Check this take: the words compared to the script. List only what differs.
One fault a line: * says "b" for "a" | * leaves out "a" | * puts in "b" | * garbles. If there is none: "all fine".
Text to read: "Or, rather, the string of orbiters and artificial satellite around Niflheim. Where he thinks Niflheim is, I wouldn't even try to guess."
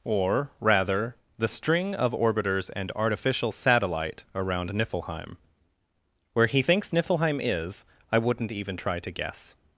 all fine